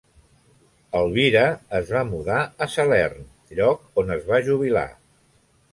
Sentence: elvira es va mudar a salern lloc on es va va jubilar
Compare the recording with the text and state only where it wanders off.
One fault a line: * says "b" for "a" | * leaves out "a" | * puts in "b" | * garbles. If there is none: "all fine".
* leaves out "va"